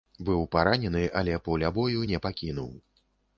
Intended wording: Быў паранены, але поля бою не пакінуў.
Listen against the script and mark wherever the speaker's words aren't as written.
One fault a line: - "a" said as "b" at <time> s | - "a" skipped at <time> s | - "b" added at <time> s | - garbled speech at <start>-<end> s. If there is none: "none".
none